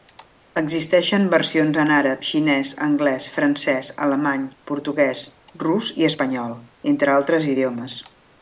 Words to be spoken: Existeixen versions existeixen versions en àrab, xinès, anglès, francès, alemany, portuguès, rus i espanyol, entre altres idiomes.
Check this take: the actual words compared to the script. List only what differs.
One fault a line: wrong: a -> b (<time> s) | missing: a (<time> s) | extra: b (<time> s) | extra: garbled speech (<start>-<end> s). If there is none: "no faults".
missing: existeixen versions (1.8 s)